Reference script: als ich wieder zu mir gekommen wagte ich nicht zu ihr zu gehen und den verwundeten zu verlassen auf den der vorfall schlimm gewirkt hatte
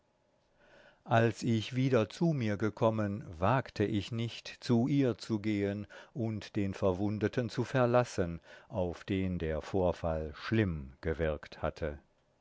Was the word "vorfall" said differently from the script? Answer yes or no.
no